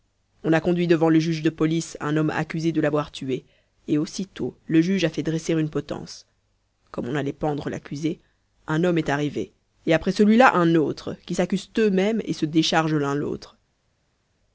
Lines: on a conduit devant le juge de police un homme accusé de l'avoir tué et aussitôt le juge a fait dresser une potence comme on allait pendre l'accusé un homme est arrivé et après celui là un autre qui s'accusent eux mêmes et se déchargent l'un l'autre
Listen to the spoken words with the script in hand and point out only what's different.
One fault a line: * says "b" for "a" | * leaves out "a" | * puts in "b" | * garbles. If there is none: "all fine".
all fine